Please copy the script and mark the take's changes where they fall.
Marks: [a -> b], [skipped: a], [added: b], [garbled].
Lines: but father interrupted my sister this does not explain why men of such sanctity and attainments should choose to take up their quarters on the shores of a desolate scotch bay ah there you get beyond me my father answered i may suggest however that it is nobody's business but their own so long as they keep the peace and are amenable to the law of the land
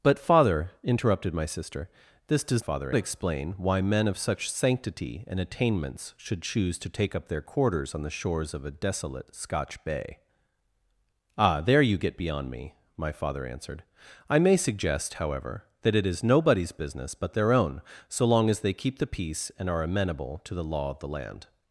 but father interrupted my sister this does [not -> father] explain why men of such sanctity and attainments should choose to take up their quarters on the shores of a desolate scotch bay ah there you get beyond me my father answered i may suggest however that it is nobody's business but their own so long as they keep the peace and are amenable to the law of the land